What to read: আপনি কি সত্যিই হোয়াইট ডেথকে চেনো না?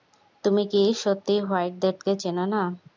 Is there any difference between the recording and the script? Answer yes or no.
yes